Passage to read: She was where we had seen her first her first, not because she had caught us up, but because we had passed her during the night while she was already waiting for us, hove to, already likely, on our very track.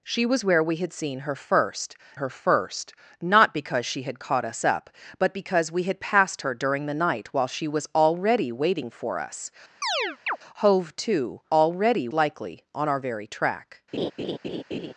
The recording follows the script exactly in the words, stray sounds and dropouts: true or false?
false